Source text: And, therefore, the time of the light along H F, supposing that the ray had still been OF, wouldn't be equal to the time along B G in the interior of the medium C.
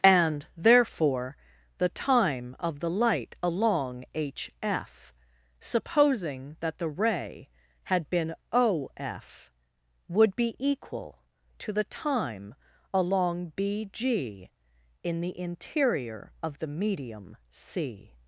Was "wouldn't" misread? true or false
true